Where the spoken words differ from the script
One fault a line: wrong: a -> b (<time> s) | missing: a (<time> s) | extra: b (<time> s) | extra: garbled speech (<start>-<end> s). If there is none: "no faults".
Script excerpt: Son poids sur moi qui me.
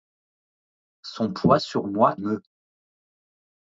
missing: qui (2.2 s)